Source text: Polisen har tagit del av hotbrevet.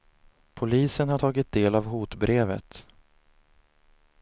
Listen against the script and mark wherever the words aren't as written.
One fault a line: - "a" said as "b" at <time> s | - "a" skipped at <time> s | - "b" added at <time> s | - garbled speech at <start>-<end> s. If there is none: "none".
none